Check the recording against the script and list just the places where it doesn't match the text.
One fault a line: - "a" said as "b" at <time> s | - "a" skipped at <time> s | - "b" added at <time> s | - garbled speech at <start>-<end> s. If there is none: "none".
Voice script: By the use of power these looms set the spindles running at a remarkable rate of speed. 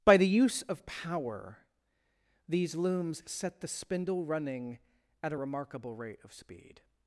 - "spindles" said as "spindle" at 3.7 s